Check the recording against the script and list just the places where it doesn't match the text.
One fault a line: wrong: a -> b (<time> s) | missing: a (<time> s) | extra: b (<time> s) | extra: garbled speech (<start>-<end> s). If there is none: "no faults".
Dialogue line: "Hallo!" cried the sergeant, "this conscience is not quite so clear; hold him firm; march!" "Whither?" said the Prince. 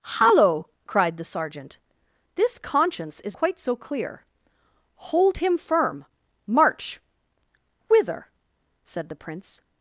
missing: not (3.4 s)